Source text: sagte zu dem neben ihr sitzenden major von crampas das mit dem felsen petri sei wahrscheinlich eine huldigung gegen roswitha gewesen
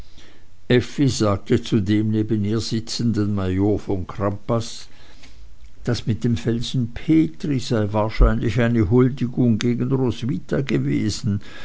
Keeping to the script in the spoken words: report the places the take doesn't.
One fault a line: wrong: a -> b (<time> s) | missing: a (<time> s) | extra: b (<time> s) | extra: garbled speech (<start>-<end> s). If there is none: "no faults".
no faults